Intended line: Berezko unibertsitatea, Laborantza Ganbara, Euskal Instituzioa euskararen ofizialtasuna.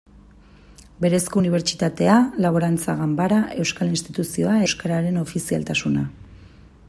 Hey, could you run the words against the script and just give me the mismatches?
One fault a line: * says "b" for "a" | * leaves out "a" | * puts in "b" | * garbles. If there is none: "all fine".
all fine